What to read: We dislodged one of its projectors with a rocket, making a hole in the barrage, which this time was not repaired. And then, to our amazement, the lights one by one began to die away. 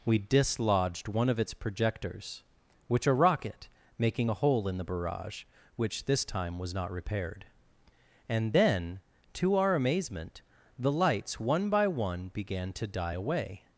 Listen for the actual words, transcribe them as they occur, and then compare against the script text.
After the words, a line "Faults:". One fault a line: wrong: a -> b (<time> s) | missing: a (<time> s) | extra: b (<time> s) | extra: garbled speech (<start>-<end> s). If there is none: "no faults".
We dislodged one of its projectors which a rocket, making a hole in the barrage, which this time was not repaired. And then, to our amazement, the lights one by one began to die away.
Faults:
wrong: with -> which (2.9 s)